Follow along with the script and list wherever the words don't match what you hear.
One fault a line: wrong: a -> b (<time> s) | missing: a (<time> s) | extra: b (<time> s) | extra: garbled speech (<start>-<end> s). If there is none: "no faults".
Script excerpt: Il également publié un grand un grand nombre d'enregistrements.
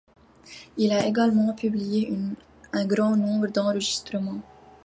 extra: a (0.9 s)
missing: un grand (3.1 s)